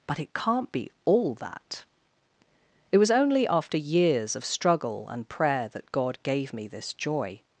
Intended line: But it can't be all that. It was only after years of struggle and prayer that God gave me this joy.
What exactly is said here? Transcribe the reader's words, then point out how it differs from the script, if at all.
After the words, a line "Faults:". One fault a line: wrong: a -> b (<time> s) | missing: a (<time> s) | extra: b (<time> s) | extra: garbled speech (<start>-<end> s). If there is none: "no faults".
But it can't be all that. It was only after years of struggle and prayer that God gave me this joy.
Faults:
no faults